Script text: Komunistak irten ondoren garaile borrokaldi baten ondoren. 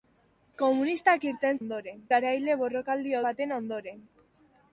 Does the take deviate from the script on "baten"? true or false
false